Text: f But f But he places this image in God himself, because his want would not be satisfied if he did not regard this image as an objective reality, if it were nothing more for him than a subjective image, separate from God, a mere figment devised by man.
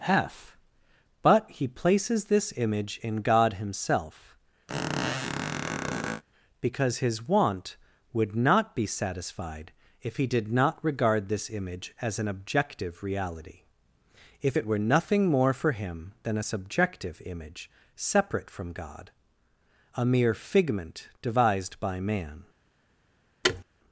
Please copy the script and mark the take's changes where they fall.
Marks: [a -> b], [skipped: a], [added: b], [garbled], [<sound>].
f But [skipped: f But] he places this image in God himself, [squeak] because his want would not be satisfied if he did not regard this image as an objective reality, if it were nothing more for him than a subjective image, separate from God, a mere figment devised by man. [thud]